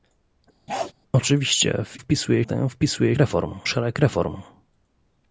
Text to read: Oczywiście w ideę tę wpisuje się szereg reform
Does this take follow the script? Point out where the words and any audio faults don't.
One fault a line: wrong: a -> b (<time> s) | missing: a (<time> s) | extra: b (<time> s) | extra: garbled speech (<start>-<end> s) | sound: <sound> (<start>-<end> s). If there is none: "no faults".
sound: bark (0.7-0.9 s)
wrong: ideę -> wpisuje (2.0 s)
wrong: się -> reform (3.2 s)